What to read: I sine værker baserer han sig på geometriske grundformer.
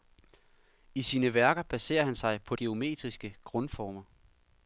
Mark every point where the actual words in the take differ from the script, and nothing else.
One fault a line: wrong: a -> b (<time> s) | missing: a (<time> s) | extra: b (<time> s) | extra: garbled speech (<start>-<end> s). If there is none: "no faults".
no faults